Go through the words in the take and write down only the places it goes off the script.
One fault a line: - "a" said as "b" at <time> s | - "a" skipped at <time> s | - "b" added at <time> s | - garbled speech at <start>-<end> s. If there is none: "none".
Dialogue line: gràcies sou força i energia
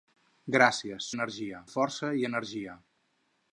- "sou" said as "energia" at 1.2 s